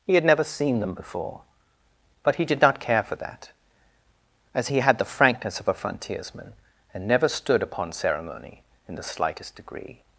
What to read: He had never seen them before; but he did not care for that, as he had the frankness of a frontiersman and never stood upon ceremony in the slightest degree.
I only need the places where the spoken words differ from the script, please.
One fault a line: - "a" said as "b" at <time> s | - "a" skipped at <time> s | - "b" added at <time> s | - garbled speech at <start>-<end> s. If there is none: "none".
none